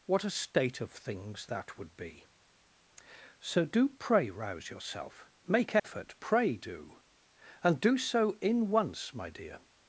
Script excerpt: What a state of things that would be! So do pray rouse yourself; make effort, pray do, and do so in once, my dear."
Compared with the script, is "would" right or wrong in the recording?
right